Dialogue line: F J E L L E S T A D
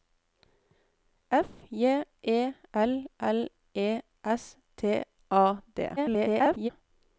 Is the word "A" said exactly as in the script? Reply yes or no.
yes